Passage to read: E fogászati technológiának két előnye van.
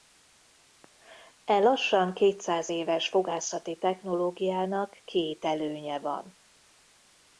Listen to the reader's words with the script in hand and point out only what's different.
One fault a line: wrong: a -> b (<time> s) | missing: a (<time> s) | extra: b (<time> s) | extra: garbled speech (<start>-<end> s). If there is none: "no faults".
extra: lassan kétszáz éves (1.6 s)